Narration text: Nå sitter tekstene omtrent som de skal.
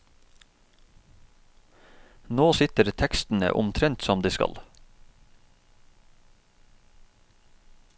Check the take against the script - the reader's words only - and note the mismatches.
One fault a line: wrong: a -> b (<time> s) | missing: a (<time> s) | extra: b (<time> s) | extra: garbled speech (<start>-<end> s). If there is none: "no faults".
no faults